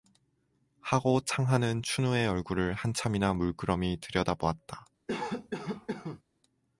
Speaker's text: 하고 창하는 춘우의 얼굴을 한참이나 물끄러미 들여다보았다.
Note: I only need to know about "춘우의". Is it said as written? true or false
true